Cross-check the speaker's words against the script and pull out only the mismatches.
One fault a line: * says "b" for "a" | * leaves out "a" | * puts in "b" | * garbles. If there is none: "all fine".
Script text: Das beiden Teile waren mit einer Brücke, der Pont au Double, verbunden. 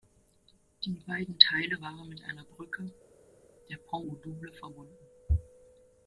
* says "Die" for "Das"